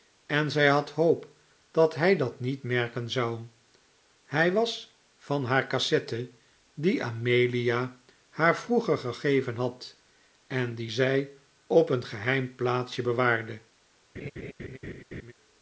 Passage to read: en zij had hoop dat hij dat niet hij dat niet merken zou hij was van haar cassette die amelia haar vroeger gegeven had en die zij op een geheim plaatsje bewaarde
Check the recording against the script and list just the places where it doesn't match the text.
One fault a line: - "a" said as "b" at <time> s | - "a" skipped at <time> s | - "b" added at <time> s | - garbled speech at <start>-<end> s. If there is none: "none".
- "hij dat niet" skipped at 2.6 s